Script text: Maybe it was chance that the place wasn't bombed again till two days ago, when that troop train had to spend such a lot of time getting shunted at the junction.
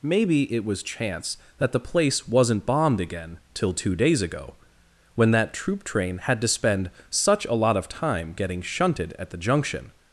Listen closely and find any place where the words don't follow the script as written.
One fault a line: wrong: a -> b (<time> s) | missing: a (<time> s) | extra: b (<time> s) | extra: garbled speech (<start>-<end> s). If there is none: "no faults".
no faults